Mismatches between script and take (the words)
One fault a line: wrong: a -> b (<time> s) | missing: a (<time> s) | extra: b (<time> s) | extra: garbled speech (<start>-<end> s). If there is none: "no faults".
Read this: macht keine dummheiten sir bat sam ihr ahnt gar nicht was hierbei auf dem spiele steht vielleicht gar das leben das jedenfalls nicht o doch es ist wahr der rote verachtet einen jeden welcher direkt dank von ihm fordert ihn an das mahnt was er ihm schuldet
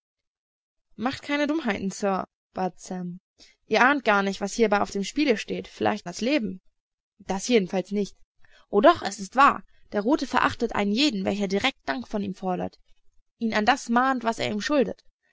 missing: gar (6.1 s)